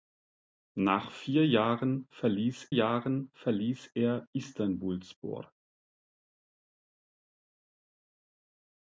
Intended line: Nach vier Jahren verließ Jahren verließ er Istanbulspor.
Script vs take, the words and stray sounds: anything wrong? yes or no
no